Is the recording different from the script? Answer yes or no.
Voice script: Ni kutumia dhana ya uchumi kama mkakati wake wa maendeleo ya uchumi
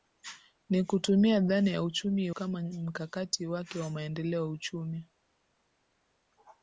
no